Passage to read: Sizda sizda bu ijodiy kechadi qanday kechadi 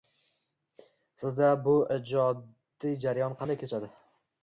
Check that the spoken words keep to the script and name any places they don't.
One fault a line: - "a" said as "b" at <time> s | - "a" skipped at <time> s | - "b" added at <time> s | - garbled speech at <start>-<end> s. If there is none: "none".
- "sizda" skipped at 1.5 s
- "kechadi" said as "jarayon" at 3.1 s